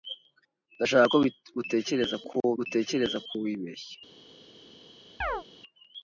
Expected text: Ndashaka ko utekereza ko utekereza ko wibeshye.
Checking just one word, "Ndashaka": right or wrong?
right